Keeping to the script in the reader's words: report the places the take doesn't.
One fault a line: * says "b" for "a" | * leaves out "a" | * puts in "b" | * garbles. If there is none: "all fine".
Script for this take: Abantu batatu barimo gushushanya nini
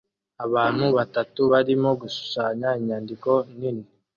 * puts in "inyandiko"